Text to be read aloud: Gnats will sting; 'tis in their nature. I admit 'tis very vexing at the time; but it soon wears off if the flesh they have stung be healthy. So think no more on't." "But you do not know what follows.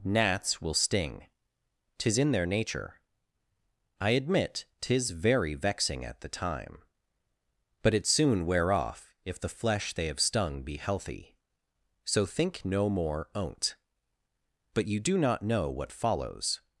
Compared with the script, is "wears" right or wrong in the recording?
wrong